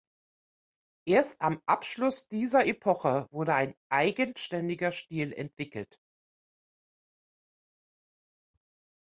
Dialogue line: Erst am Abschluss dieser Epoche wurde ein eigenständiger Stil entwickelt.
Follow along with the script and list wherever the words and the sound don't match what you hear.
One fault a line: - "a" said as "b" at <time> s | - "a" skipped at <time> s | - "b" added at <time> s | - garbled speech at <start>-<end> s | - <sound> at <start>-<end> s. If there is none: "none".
none